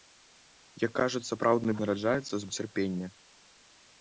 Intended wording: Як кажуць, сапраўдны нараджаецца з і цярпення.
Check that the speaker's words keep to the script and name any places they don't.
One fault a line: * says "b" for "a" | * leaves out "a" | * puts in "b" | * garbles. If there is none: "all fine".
all fine